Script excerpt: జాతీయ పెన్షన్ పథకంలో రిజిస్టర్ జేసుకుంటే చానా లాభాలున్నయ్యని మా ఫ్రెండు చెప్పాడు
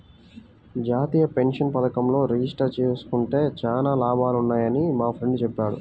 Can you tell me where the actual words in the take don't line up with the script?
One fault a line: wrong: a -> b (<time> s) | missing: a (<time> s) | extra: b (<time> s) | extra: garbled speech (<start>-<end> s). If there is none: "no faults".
no faults